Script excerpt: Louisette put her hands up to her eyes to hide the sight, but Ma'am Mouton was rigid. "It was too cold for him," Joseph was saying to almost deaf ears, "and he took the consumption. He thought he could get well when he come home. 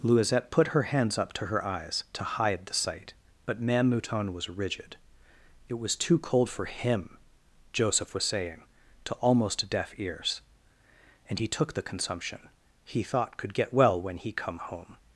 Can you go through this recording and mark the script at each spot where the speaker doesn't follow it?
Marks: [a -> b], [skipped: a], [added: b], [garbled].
Louisette put her hands up to her eyes to hide the sight, but Ma'am Mouton was rigid. "It was too cold for him," Joseph was saying to almost deaf ears, "and he took the consumption. He thought [skipped: he] could get well when he come home.